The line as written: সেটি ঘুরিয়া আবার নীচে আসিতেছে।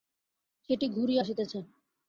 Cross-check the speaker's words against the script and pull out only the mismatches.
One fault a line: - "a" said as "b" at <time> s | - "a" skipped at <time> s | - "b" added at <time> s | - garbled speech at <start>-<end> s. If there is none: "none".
- "আবার নীচে" skipped at 1.2 s